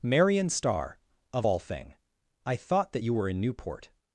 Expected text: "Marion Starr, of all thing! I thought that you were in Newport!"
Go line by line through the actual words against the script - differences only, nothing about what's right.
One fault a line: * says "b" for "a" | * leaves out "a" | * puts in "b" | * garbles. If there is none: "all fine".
all fine